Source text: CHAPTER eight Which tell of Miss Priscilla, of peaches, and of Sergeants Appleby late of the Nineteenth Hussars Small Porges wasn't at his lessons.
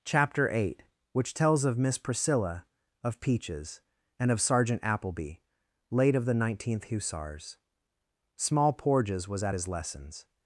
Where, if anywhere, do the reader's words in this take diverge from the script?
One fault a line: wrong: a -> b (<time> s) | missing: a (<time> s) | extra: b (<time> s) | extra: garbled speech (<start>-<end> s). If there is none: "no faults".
wrong: tell -> tells (1.3 s)
wrong: Sergeants -> Sergeant (4.4 s)
wrong: wasn't -> was (9.3 s)